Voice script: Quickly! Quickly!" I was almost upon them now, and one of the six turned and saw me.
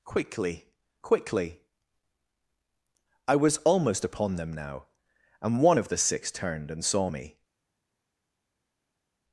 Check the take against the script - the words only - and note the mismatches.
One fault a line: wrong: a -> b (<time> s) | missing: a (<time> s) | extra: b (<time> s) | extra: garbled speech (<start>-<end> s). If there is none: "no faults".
no faults